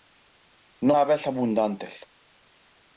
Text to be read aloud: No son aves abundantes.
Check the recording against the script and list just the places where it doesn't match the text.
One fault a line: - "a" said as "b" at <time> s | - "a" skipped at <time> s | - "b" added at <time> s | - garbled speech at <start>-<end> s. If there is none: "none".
- "son" skipped at 0.9 s